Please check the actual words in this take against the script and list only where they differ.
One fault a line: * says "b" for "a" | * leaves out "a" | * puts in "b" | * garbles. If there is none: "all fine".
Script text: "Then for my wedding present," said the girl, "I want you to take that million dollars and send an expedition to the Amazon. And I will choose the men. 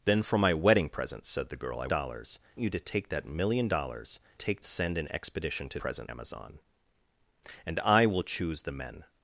* says "dollars" for "want"
* says "take" for "and"
* says "present" for "the"